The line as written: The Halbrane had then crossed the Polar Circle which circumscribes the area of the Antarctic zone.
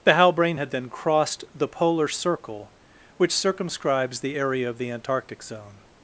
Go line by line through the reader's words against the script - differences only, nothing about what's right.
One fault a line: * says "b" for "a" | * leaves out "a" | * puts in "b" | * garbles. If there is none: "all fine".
all fine